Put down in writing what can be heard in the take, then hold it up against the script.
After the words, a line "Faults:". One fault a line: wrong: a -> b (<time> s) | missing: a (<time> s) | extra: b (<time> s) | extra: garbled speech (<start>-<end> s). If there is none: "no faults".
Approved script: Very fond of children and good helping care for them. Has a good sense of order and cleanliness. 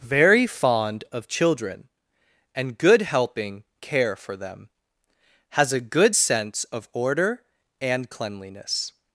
Very fond of children and good helping care for them. Has a good sense of order and cleanliness.
Faults:
no faults